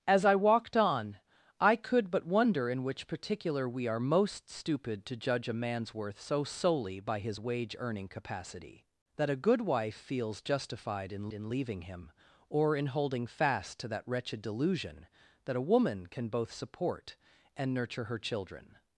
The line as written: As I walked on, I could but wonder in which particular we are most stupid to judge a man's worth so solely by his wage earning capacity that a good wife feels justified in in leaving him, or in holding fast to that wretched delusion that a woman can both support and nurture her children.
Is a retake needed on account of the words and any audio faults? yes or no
no